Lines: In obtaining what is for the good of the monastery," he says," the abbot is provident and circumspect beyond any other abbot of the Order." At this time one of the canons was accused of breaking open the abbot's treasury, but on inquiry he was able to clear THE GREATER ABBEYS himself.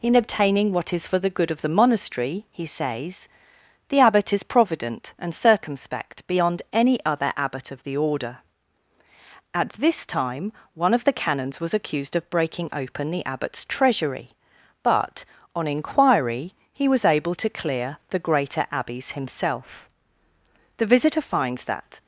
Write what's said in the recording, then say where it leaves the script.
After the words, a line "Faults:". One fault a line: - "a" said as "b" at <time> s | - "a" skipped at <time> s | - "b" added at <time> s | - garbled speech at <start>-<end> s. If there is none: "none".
In obtaining what is for the good of the monastery," he says," the abbot is provident and circumspect beyond any other abbot of the Order." At this time one of the canons was accused of breaking open the abbot's treasury, but on inquiry he was able to clear THE GREATER ABBEYS himself. The visitor finds that
Faults:
- "The visitor finds that" added at 20.8 s